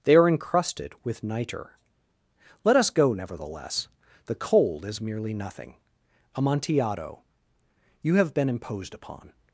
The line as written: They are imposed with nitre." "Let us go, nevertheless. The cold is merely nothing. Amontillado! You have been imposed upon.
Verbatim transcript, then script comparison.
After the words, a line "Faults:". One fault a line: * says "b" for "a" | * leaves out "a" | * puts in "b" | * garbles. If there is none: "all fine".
They are encrusted with nitre." "Let us go, nevertheless. The cold is merely nothing. Amontillado! You have been imposed upon.
Faults:
* says "encrusted" for "imposed"